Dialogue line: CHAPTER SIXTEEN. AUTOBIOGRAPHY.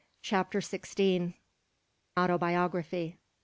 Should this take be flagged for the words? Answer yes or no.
no